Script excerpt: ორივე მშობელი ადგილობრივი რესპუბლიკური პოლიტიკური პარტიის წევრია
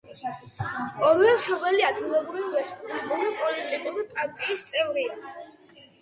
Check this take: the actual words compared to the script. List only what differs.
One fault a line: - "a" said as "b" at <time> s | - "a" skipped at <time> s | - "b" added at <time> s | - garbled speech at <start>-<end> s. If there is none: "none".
none